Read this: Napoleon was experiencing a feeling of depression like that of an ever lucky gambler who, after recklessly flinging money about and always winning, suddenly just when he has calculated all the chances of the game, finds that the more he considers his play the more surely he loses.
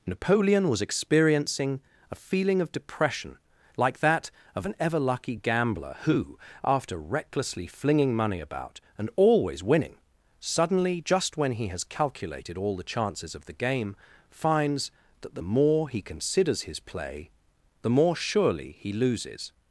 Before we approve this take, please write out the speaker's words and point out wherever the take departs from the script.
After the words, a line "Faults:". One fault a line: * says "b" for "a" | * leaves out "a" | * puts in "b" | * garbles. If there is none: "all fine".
Napoleon was experiencing a feeling of depression like that of an ever lucky gambler who, after recklessly flinging money about and always winning, suddenly just when he has calculated all the chances of the game, finds that the more he considers his play the more surely he loses.
Faults:
all fine